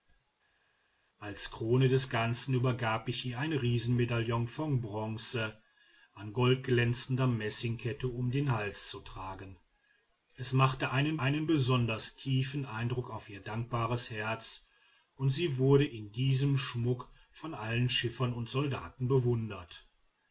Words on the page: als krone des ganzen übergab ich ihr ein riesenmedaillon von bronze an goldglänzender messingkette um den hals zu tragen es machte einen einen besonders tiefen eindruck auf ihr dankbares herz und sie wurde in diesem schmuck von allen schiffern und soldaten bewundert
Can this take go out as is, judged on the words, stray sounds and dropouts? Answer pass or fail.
pass